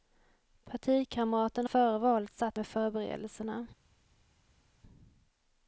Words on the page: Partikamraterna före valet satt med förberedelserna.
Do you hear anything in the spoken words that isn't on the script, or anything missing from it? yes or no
no